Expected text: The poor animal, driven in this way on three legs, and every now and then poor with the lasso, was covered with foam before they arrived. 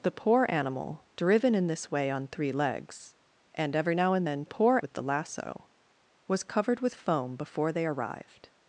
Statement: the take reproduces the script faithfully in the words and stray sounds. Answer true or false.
true